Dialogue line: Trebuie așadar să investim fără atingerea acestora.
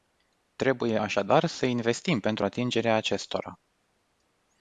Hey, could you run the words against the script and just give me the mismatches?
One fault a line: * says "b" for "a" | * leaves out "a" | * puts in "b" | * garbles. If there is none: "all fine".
* says "pentru" for "fără"